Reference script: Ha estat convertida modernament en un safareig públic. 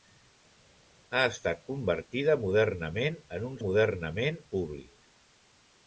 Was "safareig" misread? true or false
true